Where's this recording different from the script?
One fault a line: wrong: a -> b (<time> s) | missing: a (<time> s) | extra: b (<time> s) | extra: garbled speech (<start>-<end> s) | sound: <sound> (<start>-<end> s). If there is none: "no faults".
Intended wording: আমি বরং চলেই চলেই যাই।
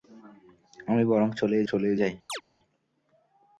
sound: chirp (2.3-2.4 s)